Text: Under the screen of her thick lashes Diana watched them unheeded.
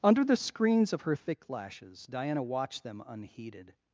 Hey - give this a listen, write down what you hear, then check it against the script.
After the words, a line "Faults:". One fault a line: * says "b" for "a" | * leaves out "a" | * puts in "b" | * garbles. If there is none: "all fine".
Under the screens of her thick lashes Diana watched them unheeded.
Faults:
* says "screens" for "screen"